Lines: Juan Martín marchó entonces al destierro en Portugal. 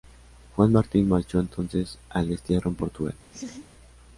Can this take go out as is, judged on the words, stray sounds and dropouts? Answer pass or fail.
fail